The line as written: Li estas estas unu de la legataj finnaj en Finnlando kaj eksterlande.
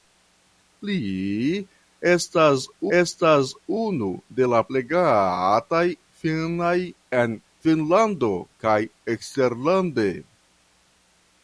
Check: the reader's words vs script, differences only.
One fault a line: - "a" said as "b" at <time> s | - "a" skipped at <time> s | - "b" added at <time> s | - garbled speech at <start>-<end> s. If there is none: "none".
none